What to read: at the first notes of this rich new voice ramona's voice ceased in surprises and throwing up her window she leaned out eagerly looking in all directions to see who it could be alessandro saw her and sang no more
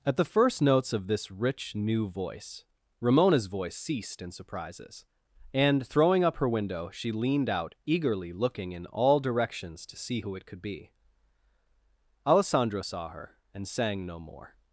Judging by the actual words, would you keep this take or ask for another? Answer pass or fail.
pass